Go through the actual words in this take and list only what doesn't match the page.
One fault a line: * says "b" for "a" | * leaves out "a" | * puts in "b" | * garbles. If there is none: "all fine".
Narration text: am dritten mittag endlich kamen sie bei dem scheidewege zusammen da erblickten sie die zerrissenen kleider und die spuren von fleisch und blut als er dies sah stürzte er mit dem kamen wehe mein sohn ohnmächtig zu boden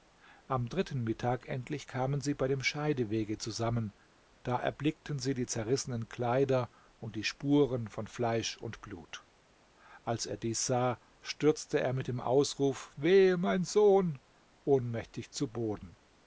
* says "ausruf" for "kamen"